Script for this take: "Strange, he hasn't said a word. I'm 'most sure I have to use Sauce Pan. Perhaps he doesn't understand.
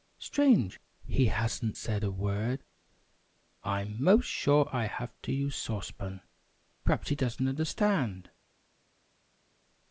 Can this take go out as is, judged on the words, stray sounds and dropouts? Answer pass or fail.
pass